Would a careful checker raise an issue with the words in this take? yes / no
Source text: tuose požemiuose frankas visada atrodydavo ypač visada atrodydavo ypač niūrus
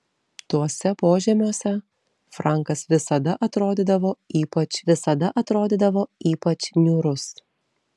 no